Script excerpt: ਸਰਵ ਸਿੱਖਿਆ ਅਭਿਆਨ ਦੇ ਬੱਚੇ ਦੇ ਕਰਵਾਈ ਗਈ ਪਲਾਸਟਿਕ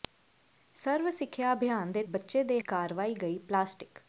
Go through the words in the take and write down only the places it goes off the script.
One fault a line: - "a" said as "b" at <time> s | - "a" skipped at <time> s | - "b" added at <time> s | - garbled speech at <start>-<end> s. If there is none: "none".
none